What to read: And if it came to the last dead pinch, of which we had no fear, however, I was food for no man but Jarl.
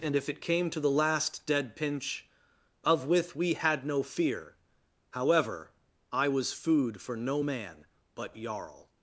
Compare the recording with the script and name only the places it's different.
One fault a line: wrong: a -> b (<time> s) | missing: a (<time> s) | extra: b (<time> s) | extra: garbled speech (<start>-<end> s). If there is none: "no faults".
wrong: which -> with (3.0 s)